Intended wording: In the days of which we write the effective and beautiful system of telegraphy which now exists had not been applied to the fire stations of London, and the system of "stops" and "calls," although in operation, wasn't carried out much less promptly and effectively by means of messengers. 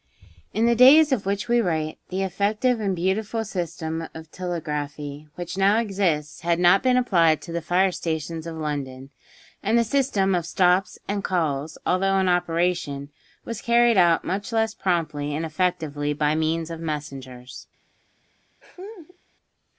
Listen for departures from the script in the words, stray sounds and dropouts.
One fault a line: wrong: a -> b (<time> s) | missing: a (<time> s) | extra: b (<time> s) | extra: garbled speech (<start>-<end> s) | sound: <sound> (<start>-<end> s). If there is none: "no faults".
wrong: wasn't -> was (13.4 s)
sound: laugh (18.6-19.2 s)